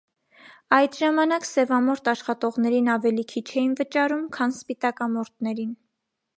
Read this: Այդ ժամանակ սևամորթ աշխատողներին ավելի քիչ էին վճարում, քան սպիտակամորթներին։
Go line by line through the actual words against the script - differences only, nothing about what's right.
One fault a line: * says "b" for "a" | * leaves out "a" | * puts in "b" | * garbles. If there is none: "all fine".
all fine